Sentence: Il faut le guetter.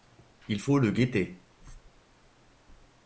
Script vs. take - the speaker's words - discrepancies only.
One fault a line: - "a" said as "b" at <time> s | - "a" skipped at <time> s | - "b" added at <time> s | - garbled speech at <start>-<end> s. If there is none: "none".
none